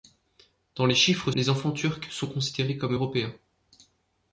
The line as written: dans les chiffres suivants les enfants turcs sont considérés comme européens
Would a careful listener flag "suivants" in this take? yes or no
yes